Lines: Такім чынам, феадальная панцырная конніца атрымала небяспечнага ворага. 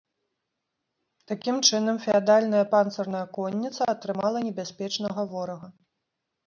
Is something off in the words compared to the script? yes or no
no